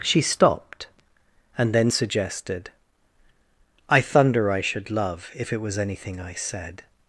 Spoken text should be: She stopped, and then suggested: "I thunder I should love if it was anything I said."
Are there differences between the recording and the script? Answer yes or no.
no